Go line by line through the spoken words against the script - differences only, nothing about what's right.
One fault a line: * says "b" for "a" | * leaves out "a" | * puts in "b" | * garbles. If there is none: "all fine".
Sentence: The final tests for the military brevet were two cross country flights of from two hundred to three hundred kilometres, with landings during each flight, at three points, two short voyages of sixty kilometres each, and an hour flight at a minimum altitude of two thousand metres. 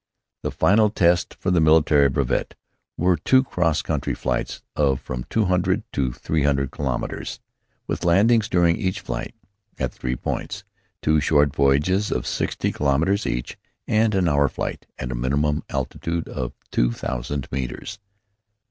all fine